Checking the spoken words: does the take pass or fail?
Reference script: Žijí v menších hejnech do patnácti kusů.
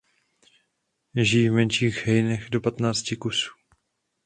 pass